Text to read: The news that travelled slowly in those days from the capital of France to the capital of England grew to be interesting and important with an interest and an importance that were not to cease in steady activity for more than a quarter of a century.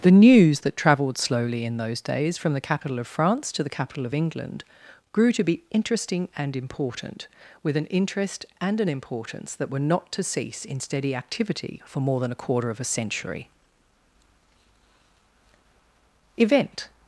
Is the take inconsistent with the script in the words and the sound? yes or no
yes